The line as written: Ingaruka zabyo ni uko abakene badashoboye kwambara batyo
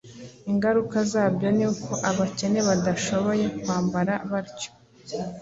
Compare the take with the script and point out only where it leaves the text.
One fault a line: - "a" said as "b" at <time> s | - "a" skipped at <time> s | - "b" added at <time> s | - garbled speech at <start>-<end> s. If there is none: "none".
none